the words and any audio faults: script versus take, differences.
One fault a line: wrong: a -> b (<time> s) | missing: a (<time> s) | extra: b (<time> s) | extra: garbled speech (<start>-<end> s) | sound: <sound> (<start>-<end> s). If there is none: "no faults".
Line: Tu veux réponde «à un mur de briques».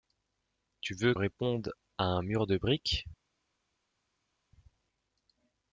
no faults